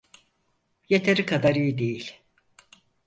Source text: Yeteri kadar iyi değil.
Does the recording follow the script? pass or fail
pass